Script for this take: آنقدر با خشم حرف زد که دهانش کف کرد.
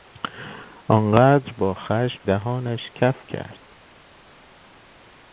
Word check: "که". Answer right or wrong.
wrong